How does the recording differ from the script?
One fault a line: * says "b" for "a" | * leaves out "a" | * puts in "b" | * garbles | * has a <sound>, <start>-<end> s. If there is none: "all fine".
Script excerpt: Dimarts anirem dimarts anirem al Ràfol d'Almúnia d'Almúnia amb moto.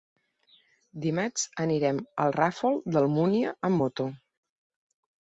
* leaves out "dimarts anirem"
* leaves out "d'Almúnia"